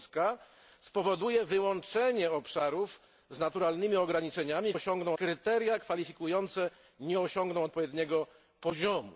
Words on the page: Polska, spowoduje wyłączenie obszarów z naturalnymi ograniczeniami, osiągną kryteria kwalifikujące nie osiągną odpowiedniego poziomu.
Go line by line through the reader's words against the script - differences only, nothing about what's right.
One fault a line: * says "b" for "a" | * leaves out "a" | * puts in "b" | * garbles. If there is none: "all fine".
all fine